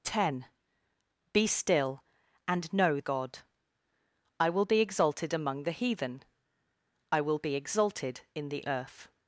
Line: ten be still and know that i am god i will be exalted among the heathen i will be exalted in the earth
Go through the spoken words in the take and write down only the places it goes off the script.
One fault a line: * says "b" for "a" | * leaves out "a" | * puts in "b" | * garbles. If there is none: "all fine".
* leaves out "that i am"